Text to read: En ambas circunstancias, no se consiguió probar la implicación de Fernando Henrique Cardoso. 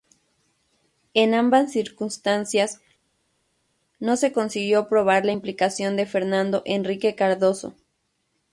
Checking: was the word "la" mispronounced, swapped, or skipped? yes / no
no